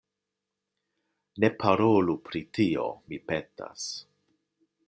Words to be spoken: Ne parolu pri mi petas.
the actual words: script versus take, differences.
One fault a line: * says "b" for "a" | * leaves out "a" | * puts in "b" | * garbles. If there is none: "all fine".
* puts in "tio"